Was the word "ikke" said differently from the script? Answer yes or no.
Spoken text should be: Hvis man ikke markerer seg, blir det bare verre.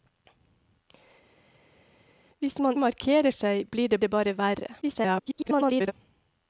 yes